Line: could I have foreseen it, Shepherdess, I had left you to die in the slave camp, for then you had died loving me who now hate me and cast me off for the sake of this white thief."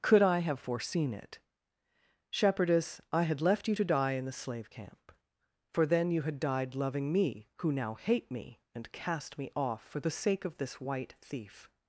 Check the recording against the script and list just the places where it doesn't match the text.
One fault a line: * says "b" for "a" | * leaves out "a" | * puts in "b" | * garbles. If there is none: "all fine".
all fine